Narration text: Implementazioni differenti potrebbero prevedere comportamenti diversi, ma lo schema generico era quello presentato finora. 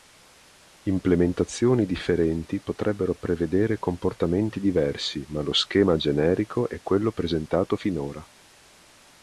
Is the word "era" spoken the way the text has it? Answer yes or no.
no